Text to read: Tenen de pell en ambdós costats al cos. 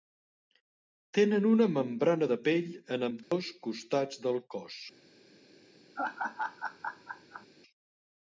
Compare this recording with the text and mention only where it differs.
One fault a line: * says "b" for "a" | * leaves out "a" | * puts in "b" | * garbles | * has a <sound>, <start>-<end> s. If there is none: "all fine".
* puts in "una membrana"
* has a dropout, 3.2-3.3 s
* says "del" for "al"
* has a laugh, 6.0-7.5 s